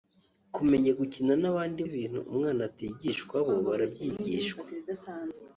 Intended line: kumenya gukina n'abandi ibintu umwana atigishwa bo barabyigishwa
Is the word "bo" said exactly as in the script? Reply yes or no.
yes